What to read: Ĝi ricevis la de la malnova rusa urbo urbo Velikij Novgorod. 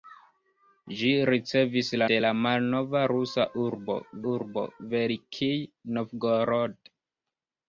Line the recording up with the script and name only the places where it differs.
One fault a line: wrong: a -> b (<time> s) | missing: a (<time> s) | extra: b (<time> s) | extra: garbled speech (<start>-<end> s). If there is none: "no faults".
no faults